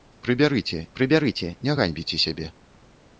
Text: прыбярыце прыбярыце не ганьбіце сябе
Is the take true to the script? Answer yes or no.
yes